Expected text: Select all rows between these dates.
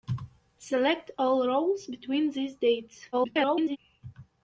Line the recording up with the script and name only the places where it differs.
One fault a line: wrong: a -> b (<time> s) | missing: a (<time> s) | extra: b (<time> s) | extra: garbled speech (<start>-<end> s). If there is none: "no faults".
extra: garbled speech (3.1-3.8 s)